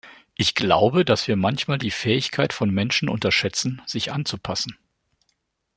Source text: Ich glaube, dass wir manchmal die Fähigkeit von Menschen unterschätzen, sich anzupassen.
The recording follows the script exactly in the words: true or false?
true